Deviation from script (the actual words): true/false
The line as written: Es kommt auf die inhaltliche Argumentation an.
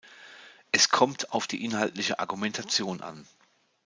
false